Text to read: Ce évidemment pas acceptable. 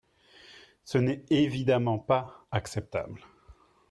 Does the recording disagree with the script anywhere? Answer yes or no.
yes